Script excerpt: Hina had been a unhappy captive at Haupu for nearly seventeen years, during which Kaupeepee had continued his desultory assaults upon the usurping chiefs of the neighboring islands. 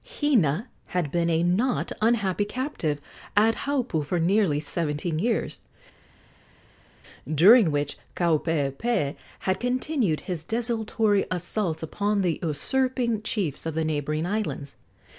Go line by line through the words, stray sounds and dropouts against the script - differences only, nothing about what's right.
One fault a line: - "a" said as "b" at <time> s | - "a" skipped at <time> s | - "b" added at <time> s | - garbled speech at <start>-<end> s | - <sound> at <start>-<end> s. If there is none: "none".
- "not" added at 1.4 s